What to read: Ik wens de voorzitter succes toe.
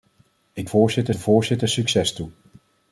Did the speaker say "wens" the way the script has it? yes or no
no